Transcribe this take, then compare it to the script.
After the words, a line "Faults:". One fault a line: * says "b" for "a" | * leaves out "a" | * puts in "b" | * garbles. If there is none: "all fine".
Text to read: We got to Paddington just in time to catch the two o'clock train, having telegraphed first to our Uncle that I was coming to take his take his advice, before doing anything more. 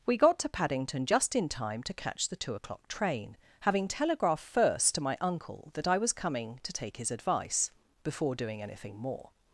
We got to Paddington just in time to catch the two o'clock train, having telegraphed first to my Uncle that I was coming to take his advice, before doing anything more.
Faults:
* says "my" for "our"
* leaves out "take his"